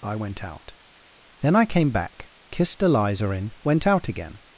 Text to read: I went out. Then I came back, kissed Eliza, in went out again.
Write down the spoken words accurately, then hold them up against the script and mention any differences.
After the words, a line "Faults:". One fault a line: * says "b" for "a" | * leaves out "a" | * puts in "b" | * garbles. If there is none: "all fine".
I went out. Then I came back, kissed Eliza, in went out again.
Faults:
all fine